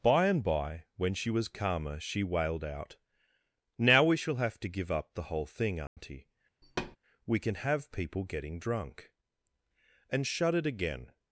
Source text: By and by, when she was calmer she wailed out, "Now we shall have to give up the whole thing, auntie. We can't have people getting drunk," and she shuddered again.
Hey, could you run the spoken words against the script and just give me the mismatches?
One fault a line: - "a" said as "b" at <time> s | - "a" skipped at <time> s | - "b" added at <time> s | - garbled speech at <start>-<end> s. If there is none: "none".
- "can't" said as "can" at 7.4 s
- "she" skipped at 10.3 s